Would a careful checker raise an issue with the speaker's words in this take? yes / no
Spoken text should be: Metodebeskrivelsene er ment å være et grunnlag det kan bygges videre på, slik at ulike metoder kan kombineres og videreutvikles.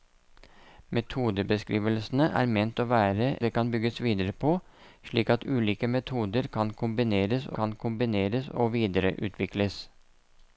yes